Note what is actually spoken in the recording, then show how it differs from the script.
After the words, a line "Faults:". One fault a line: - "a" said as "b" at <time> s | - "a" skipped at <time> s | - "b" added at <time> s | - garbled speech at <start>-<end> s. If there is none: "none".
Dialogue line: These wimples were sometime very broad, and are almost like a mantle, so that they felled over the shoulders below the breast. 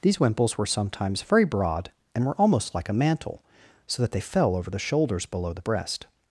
These wimples were sometimes very broad, and were almost like a mantle, so that they fell over the shoulders below the breast.
Faults:
- "sometime" said as "sometimes" at 0.7 s
- "are" said as "were" at 2.2 s
- "felled" said as "fell" at 4.2 s